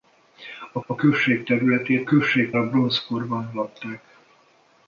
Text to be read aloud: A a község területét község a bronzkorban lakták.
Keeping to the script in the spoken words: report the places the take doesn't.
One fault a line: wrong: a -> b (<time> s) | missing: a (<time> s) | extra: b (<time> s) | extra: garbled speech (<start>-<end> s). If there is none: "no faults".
no faults